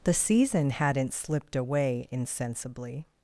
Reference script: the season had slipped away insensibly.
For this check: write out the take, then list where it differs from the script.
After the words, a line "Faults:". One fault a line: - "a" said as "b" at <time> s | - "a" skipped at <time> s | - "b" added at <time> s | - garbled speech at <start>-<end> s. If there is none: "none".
the season hadn't slipped away insensibly.
Faults:
- "had" said as "hadn't" at 0.7 s